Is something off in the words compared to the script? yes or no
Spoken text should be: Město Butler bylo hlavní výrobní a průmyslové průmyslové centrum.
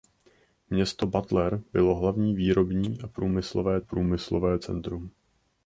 no